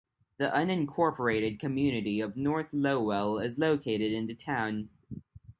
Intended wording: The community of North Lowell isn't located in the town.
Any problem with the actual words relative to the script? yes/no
yes